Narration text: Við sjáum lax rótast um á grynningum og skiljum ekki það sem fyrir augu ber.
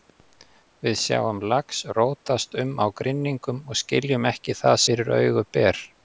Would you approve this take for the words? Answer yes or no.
no